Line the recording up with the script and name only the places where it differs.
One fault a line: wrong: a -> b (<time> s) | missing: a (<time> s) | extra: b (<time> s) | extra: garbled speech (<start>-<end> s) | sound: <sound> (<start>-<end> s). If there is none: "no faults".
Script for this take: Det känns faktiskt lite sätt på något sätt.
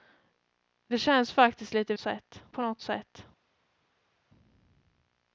no faults